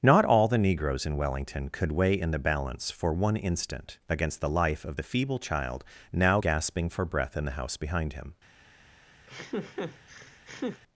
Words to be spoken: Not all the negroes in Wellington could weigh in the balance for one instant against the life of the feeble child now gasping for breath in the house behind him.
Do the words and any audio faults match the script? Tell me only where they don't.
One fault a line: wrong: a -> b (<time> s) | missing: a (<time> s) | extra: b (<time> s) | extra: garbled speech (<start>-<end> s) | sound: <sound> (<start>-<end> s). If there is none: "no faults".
sound: laugh (9.3-10.8 s)